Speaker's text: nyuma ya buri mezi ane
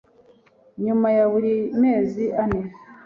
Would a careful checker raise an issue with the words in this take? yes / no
no